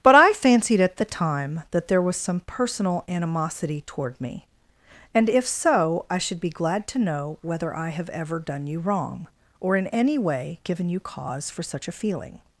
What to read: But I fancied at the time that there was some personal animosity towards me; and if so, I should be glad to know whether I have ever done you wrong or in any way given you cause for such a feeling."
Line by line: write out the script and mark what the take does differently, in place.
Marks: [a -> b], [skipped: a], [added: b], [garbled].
But I fancied at the time that there was some personal animosity [towards -> toward] me; and if so, I should be glad to know whether I have ever done you wrong or in any way given you cause for such a feeling."